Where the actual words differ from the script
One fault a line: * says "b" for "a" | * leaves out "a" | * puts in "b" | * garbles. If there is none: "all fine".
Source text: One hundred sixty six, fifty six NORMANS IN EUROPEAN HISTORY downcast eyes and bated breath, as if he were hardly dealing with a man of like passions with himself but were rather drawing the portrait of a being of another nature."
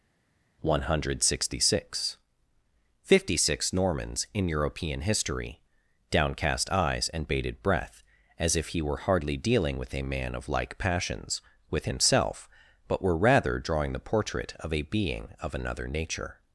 all fine